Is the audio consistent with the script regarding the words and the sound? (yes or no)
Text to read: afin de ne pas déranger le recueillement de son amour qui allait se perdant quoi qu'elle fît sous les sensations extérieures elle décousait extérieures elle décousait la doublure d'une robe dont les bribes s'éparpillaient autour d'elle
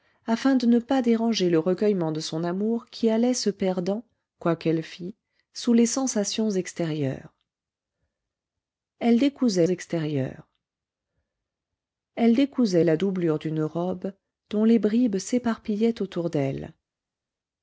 yes